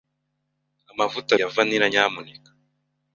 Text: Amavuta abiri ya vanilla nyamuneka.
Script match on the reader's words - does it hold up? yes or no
no